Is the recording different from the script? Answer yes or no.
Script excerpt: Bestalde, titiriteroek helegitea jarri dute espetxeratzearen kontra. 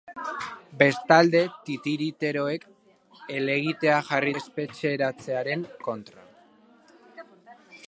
yes